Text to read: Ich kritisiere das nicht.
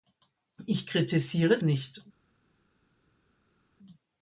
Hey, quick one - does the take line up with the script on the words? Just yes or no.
no